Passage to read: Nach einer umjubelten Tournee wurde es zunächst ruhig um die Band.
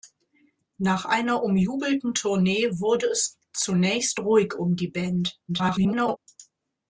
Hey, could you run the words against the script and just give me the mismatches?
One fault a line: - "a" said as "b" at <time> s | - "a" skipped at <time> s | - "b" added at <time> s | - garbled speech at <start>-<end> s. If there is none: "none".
- garbled speech at 5.5-6.2 s